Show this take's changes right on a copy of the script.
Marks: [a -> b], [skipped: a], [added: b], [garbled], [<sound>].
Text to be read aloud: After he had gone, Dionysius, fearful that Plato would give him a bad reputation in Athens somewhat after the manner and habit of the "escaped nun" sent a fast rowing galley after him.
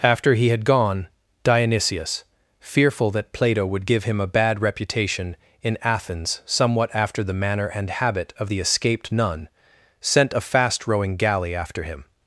After he had gone, Dionysius, fearful that Plato would give him a bad reputation in Athens somewhat after the manner and habit of the "escaped nun" sent a fast rowing galley after him.